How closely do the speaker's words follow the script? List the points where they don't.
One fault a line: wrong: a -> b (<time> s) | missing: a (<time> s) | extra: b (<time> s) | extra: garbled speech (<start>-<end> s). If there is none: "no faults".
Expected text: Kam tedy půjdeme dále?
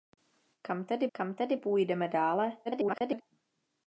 extra: kam tedy (1.1 s)
extra: garbled speech (2.7-3.2 s)